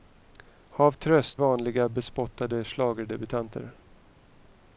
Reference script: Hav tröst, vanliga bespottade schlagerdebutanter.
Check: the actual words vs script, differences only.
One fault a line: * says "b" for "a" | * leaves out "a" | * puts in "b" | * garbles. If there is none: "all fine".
all fine